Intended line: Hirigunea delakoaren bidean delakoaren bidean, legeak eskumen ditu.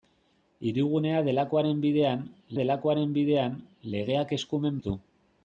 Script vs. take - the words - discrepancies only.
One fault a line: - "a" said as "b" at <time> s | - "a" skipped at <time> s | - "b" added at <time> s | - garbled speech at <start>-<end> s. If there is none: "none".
none